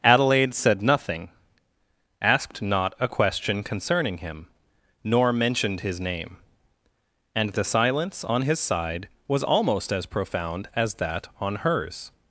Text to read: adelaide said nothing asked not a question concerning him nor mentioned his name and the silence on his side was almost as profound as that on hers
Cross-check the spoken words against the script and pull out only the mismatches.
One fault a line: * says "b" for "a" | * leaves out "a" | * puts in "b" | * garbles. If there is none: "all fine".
all fine